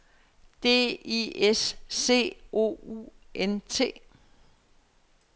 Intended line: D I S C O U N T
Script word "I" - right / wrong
right